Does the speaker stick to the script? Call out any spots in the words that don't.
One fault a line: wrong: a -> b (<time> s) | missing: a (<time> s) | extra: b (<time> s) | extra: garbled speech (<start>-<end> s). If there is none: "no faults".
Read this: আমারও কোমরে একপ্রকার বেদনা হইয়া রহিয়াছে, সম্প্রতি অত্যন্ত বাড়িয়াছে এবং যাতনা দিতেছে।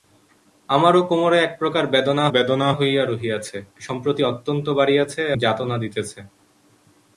extra: বেদনা (2.3 s)
missing: এবং (5.2 s)